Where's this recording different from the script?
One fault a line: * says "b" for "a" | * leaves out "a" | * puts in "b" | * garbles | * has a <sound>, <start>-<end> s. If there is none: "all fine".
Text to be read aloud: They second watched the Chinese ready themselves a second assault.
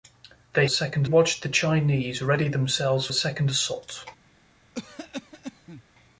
* has a cough, 4.7-5.8 s